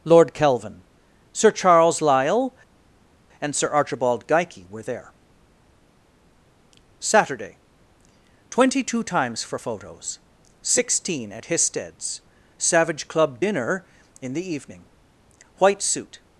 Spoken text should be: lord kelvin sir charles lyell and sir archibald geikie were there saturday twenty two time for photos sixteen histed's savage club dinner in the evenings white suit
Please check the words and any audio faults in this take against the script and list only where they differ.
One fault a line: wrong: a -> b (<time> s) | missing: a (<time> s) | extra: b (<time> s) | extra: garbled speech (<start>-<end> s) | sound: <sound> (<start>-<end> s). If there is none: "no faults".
wrong: time -> times (9.0 s)
extra: at (11.3 s)
wrong: evenings -> evening (14.5 s)